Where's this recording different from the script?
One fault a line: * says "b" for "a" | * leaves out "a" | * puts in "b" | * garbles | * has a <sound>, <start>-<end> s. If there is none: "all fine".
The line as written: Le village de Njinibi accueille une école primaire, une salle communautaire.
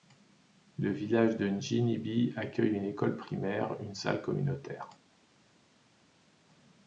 all fine